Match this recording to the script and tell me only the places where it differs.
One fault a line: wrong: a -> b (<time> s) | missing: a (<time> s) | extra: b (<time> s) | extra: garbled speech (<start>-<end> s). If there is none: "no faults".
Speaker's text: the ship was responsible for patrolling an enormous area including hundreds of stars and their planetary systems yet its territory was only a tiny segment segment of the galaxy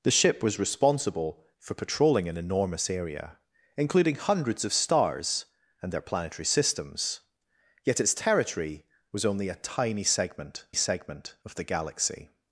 no faults